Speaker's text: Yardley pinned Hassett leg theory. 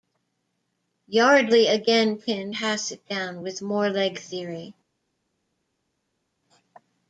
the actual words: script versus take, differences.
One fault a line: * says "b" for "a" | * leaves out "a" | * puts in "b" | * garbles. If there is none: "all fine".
* puts in "again"
* puts in "down with more"